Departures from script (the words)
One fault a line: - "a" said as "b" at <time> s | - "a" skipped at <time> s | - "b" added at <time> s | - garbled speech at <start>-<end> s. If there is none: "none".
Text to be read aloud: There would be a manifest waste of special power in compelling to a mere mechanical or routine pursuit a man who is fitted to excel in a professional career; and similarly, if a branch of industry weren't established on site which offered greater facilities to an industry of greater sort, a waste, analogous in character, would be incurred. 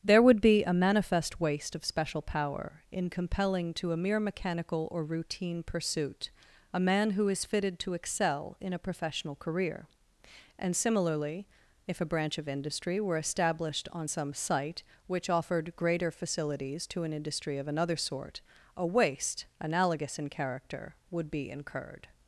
- "weren't" said as "were" at 13.0 s
- "some" added at 14.1 s
- "greater" said as "another" at 17.7 s